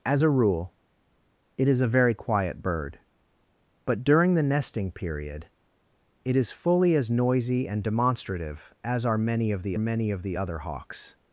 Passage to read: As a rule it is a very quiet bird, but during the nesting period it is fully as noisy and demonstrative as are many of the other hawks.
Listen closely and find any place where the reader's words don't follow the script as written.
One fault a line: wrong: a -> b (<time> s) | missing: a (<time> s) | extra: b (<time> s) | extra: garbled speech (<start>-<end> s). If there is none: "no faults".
extra: many of the (9.8 s)